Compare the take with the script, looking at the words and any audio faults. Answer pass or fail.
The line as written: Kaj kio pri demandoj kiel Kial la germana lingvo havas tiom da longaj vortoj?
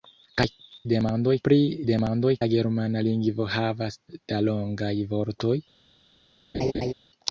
fail